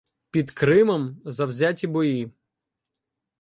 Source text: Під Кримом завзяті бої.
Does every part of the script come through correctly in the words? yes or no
yes